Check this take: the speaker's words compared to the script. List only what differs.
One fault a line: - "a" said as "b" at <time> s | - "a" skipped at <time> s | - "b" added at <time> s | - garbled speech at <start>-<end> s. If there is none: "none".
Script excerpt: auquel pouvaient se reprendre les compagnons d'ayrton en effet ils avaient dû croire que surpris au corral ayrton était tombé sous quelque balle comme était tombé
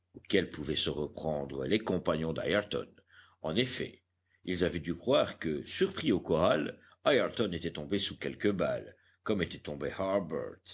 none